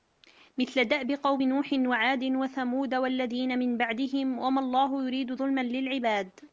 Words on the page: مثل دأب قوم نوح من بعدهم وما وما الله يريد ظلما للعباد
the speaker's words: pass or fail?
fail